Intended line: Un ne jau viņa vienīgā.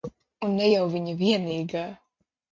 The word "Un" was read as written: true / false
true